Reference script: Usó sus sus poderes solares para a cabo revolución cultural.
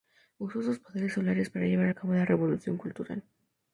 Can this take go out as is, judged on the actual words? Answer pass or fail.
fail